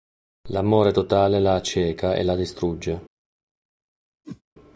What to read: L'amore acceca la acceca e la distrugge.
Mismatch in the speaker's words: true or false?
true